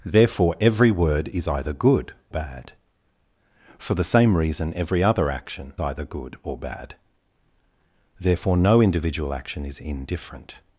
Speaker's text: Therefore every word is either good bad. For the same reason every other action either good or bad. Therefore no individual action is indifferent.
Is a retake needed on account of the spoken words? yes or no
no